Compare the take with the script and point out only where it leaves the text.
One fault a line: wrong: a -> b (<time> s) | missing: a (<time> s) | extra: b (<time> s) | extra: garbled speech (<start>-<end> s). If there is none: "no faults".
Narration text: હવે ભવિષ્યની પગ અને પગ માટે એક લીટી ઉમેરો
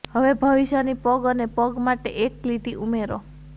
no faults